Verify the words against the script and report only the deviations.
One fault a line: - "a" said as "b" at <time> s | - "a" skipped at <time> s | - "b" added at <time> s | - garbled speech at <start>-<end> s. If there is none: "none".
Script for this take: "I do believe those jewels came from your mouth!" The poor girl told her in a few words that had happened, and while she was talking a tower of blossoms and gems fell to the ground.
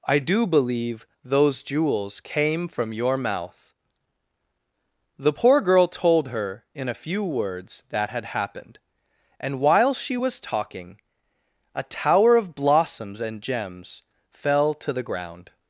none